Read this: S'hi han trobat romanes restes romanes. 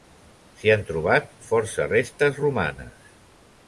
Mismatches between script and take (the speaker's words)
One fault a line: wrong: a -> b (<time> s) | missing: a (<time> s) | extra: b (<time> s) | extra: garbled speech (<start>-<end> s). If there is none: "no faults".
wrong: romanes -> força (1.5 s)